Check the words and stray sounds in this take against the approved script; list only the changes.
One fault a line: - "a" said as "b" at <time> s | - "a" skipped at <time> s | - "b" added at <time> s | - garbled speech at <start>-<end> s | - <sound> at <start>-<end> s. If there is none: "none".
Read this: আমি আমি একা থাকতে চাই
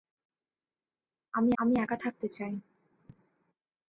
none